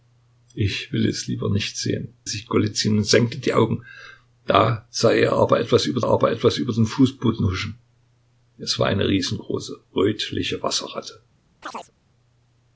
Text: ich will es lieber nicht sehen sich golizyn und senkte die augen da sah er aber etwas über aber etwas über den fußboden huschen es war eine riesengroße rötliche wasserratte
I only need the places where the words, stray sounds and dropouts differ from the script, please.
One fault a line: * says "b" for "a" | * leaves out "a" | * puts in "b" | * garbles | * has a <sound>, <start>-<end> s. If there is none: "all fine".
* has a chirp, 11.6-11.9 s